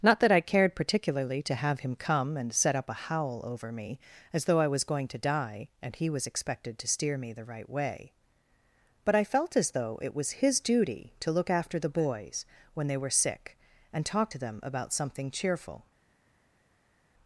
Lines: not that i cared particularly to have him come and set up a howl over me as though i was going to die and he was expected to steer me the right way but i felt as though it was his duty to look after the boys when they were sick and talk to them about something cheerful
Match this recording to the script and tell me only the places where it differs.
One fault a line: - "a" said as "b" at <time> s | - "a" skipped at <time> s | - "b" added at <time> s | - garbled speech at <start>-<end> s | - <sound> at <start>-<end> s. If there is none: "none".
none